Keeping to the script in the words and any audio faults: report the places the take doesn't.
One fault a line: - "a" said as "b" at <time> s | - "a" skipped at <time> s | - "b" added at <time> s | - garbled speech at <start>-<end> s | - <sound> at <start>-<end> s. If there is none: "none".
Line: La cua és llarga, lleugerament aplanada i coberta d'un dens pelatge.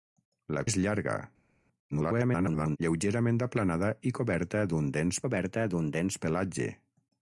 - "cua" skipped at 0.6 s
- garbled speech at 1.9-2.8 s
- "coberta d'un dens" added at 5.2 s